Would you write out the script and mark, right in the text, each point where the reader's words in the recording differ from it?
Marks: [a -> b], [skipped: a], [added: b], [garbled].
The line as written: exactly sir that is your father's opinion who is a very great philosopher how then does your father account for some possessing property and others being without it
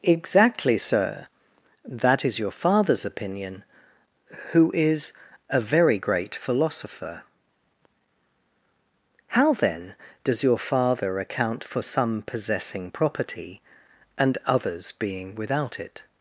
exactly sir that is your father's opinion who is a very great philosopher how then does your father account for some possessing property and others being without it